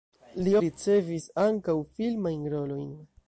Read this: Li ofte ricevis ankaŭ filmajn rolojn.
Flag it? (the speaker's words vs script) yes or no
yes